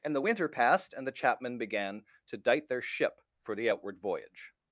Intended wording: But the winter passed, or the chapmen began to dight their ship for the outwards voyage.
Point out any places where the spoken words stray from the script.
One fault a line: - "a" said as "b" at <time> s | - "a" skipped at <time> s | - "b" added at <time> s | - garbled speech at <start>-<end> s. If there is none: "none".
- "But" said as "And" at 0.0 s
- "or" said as "and" at 0.9 s
- "outwards" said as "outward" at 3.7 s